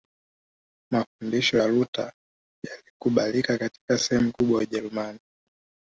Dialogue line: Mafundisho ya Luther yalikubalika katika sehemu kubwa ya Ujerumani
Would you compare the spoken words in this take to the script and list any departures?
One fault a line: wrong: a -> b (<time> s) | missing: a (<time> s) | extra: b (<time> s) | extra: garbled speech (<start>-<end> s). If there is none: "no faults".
no faults